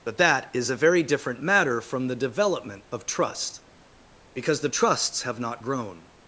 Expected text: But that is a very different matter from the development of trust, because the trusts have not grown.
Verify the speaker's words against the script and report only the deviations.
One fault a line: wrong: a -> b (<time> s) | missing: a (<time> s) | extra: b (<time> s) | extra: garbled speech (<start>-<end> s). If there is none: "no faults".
no faults